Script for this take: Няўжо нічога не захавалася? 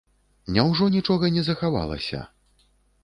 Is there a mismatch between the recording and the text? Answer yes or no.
no